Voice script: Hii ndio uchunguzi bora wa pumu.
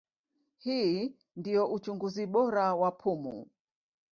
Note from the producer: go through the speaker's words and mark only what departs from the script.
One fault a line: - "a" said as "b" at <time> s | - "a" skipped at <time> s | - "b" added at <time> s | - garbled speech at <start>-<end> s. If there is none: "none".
none